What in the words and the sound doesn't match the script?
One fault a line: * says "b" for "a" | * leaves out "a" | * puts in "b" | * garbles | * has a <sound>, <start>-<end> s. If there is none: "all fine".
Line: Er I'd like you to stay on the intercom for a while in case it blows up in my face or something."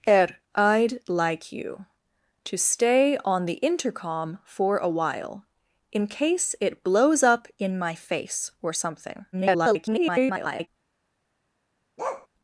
* garbles
* has a bark, 12.0-12.3 s